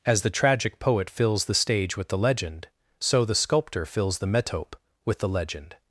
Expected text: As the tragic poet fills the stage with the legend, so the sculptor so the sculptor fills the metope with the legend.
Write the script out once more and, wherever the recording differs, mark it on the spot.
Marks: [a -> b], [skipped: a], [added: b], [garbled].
As the tragic poet fills the stage with the legend, so the sculptor [skipped: so the sculptor] fills the metope with the legend.